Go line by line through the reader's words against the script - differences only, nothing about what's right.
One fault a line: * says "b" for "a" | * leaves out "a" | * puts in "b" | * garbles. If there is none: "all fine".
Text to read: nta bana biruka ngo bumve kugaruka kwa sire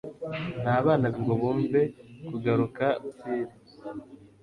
* leaves out "biruka"
* leaves out "kwa"